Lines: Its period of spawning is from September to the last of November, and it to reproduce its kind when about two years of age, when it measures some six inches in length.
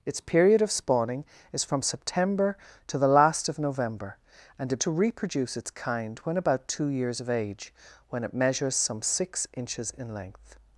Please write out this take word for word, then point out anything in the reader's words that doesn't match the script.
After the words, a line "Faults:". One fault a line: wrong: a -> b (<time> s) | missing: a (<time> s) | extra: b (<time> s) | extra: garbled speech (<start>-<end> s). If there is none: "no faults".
Its period of spawning is from September to the last of November, and it to reproduce its kind when about two years of age, when it measures some six inches in length.
Faults:
no faults